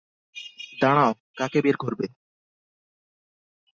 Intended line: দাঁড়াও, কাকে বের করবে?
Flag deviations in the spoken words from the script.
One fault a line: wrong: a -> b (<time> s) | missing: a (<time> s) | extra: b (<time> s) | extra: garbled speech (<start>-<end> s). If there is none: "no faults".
no faults